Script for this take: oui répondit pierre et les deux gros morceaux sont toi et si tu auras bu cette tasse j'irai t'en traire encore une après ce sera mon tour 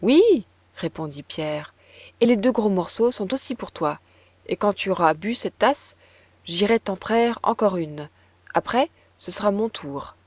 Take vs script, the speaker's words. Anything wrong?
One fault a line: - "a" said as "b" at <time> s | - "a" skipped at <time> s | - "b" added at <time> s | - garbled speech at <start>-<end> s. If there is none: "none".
- "aussi pour" added at 3.3 s
- "si" said as "quand" at 4.5 s